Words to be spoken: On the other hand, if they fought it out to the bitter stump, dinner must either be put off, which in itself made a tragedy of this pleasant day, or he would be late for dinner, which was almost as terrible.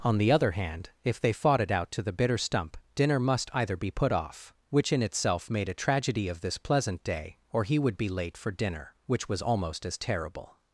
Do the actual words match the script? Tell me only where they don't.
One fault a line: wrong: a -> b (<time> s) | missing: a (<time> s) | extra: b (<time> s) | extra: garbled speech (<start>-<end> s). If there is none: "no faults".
no faults